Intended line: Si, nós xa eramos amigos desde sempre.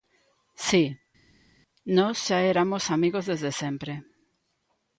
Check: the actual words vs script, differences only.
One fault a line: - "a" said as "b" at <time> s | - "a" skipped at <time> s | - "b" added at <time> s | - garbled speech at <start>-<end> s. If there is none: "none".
none